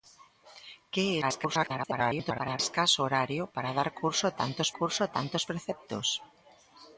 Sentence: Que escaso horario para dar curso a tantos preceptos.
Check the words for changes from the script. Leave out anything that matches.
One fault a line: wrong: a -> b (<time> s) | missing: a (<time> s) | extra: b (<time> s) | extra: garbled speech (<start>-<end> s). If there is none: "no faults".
extra: garbled speech (1.2-2.6 s)
extra: curso a tantos (4.8 s)